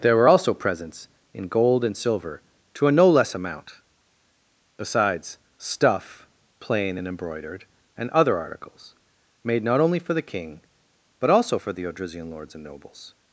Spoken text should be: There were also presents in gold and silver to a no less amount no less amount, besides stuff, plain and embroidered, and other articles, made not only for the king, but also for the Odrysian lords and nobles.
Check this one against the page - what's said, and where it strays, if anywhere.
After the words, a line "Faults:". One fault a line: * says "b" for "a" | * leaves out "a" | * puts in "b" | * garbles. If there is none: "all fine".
There were also presents in gold and silver to a no less amount, besides stuff, plain and embroidered, and other articles, made not only for the king, but also for the Odrysian lords and nobles.
Faults:
* leaves out "no less amount"